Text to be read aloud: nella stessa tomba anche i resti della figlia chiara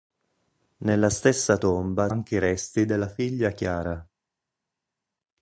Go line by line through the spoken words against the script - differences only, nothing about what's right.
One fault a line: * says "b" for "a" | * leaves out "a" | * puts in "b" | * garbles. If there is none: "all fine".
all fine